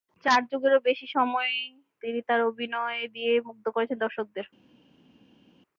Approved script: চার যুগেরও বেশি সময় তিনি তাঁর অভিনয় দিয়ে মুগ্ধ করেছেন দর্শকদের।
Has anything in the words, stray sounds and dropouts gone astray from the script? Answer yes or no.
no